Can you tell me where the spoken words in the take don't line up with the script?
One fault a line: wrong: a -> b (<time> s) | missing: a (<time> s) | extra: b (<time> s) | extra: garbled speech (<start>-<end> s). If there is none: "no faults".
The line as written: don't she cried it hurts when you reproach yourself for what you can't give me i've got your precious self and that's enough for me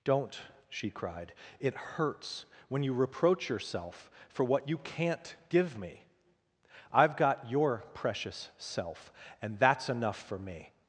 no faults